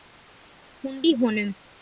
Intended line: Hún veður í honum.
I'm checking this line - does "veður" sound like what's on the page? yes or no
no